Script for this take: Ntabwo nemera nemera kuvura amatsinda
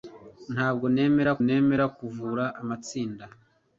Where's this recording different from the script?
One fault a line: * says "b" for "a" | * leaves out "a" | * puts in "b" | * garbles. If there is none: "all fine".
all fine